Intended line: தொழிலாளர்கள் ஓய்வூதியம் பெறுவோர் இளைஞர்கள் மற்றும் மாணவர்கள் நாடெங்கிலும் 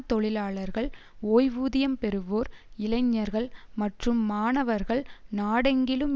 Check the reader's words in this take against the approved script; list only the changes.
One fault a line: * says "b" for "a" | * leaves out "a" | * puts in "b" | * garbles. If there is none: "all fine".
all fine